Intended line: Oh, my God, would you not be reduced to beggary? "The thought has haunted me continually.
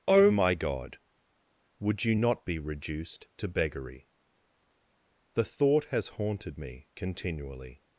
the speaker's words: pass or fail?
pass